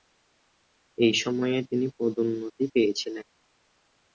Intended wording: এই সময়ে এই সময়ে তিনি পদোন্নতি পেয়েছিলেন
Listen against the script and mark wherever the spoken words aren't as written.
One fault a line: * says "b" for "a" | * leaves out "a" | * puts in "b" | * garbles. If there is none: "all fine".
* leaves out "এই সময়ে"